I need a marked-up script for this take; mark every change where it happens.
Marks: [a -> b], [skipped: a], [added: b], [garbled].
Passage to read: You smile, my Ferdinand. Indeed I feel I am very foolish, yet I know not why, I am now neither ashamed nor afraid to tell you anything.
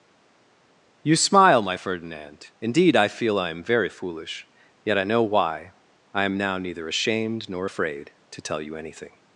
You smile, my Ferdinand. Indeed I feel I am very foolish, yet I know [skipped: not] why, I am now neither ashamed nor afraid to tell you anything.